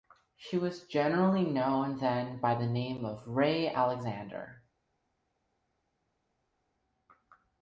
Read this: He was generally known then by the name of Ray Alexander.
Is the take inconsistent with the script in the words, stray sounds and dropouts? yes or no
yes